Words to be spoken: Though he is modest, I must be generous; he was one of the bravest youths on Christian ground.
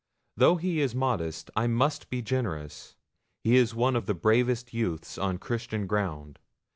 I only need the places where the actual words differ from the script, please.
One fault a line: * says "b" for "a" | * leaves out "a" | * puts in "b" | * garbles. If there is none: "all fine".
* says "is" for "was"